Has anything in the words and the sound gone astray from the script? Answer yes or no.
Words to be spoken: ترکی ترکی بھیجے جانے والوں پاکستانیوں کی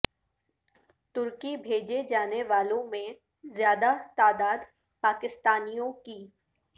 yes